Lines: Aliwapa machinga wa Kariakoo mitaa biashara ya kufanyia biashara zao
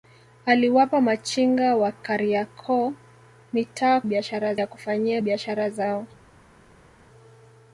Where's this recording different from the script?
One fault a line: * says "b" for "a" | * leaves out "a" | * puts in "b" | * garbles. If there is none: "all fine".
all fine